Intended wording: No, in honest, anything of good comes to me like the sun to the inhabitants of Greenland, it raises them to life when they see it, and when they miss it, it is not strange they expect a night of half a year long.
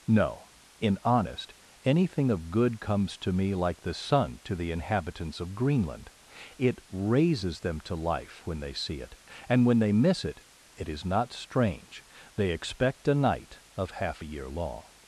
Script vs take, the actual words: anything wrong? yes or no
no